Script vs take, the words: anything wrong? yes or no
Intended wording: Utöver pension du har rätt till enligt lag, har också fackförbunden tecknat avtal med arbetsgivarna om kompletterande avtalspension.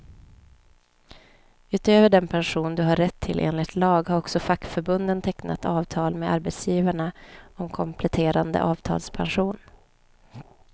yes